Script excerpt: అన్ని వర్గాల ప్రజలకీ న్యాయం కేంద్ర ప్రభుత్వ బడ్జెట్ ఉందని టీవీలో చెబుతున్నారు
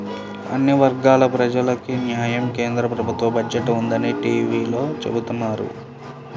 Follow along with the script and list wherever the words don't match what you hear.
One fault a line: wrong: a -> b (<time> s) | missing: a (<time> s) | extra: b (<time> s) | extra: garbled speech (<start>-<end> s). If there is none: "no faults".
no faults